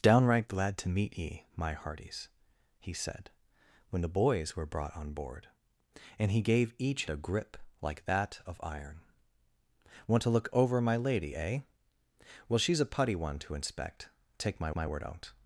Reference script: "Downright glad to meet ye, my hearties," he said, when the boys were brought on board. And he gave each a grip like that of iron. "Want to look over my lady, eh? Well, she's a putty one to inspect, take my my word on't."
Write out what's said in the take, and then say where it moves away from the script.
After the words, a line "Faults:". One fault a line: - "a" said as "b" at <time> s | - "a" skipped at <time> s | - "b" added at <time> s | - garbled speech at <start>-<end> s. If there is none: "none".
"Downright glad to meet ye, my hearties," he said, when the boys were brought on board. And he gave each a grip like that of iron. "Want to look over my lady, eh? Well, she's a putty one to inspect, take my my word on't."
Faults:
none